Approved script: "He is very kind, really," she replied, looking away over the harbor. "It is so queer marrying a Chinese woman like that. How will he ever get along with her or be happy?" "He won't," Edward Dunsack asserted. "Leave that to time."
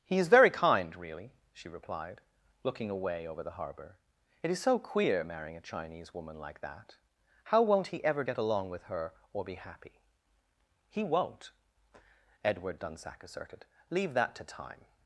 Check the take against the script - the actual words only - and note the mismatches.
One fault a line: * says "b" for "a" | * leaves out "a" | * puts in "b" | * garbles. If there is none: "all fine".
* says "won't" for "will"